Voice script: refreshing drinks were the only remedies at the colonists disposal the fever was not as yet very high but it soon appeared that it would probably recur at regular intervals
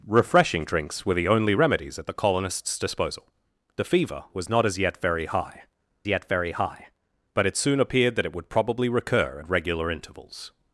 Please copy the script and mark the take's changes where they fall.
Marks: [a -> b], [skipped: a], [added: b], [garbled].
refreshing drinks were the only remedies at the colonists disposal the fever was not as yet very high [added: yet very high] but it soon appeared that it would probably recur at regular intervals